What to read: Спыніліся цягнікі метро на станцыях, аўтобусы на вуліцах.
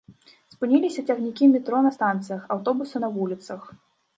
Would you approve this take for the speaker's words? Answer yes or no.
yes